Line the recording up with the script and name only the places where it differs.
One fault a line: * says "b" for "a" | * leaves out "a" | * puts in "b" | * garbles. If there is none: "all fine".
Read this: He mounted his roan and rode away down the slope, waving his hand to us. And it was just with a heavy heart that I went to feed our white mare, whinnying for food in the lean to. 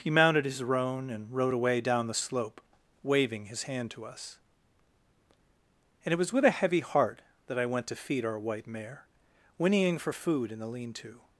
* leaves out "just"